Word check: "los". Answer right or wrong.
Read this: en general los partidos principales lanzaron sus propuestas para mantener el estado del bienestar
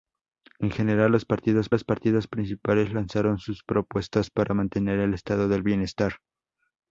right